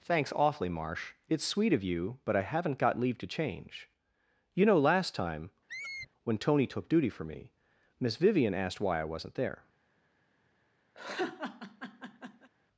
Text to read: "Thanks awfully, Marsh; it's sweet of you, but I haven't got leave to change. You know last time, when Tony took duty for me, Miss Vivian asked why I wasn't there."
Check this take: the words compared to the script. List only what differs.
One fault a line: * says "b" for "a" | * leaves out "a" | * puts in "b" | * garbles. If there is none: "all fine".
all fine